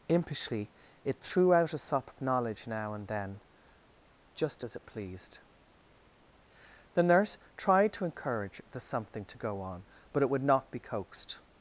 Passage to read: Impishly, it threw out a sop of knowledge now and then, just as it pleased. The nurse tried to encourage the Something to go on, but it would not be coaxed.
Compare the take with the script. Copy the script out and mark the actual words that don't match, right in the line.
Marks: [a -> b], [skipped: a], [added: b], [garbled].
Impishly, it threw out a sop of knowledge now and then, just as it pleased. The nurse tried to encourage the Something to go on, but it would not be coaxed.